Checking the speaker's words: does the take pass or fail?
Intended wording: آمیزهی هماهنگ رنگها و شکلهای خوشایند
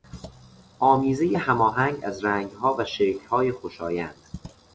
fail